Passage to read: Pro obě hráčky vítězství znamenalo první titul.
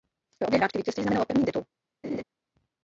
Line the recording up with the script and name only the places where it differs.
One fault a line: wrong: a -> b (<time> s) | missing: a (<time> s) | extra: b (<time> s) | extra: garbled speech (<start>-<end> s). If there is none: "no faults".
no faults